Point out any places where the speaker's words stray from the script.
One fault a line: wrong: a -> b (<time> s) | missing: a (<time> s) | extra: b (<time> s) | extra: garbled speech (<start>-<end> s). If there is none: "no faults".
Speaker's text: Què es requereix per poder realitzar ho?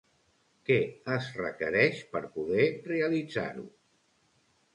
no faults